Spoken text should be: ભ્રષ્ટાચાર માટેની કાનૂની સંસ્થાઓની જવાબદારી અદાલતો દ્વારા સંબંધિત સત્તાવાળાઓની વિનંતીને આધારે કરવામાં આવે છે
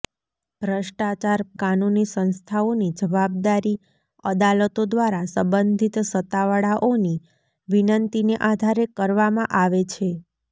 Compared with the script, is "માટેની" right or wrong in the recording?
wrong